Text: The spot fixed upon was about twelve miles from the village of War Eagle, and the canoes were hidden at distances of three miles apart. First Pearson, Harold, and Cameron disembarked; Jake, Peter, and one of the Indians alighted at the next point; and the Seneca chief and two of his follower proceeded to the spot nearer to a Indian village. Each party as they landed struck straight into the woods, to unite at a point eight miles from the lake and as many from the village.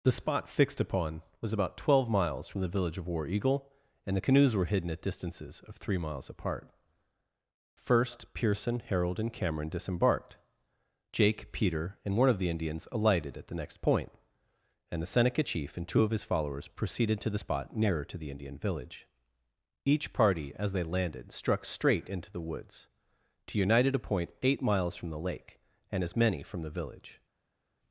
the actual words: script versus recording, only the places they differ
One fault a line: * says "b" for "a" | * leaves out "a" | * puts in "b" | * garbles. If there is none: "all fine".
* says "followers" for "follower"
* says "the" for "a"